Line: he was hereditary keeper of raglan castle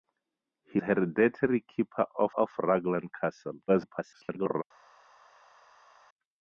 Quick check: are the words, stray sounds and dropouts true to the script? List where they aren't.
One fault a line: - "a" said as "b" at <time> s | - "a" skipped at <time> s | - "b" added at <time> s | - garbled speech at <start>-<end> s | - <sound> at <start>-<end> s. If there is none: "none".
- "was" skipped at 0.8 s
- "of" added at 2.4 s
- garbled speech at 3.7-4.6 s